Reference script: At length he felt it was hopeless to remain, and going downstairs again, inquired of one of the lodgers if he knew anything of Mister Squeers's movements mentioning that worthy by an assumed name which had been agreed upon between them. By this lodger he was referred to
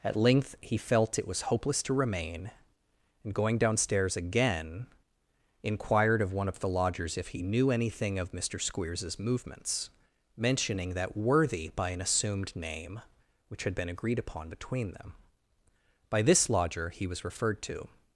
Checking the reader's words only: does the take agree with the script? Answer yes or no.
yes